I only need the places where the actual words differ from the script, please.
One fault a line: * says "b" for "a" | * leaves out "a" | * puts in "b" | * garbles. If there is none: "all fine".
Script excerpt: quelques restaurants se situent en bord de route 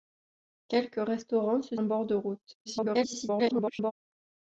* leaves out "situent"
* garbles